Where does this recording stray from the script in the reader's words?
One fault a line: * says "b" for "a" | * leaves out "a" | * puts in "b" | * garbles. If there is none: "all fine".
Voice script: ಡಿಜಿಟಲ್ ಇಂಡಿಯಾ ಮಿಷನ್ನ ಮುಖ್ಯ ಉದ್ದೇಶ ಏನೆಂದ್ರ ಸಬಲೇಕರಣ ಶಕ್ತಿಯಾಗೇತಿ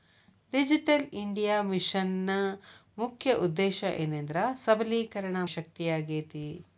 all fine